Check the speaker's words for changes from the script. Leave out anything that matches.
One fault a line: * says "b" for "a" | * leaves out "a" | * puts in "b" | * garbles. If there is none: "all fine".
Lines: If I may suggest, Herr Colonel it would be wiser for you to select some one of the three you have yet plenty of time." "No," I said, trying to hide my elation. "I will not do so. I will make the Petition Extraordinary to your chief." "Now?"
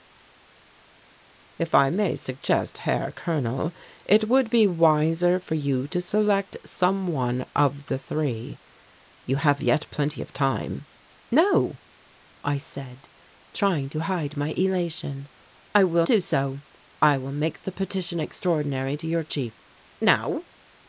* leaves out "not"